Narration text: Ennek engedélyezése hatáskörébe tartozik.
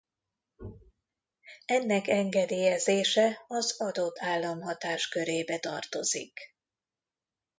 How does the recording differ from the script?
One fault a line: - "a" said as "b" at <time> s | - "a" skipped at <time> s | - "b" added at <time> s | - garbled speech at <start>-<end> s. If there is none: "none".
- "az adott állam" added at 3.5 s